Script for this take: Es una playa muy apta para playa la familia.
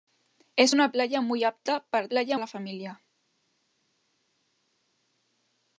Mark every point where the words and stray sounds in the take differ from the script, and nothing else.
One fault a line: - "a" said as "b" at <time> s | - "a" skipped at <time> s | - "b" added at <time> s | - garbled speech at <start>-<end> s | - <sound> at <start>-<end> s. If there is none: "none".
none